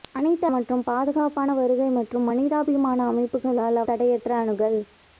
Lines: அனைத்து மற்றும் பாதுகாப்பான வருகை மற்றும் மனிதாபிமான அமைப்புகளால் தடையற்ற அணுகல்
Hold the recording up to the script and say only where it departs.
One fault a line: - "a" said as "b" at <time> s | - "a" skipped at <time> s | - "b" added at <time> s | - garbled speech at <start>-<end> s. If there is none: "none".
none